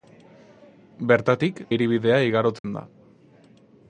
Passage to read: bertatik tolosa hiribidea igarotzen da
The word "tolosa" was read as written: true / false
false